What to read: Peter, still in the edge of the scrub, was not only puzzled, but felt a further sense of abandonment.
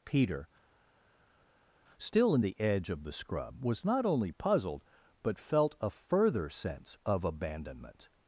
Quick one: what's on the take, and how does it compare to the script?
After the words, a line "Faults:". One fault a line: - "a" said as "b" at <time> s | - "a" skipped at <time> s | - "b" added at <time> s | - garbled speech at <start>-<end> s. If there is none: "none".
Peter, still in the edge of the scrub, was not only puzzled, but felt a further sense of abandonment.
Faults:
none